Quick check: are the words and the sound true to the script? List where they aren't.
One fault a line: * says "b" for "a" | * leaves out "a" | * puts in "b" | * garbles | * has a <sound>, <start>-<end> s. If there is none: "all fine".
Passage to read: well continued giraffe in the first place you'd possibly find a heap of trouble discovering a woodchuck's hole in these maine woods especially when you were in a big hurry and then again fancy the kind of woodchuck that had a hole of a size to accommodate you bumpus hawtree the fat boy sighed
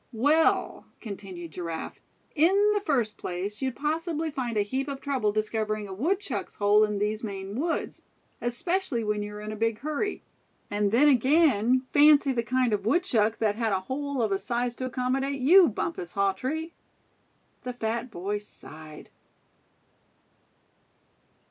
all fine